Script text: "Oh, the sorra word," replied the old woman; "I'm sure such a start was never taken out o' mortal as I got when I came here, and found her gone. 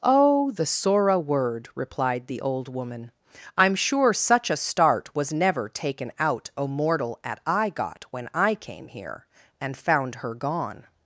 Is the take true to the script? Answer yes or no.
no